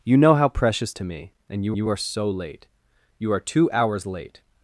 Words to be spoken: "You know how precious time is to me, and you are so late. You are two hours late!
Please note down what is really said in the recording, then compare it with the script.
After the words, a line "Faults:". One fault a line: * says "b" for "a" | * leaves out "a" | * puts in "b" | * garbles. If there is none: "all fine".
"You know how precious to me, and you you are so late. You are two hours late!
Faults:
* leaves out "time is"
* puts in "you"